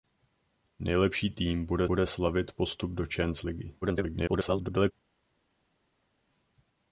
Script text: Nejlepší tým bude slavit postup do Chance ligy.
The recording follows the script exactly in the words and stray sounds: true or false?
false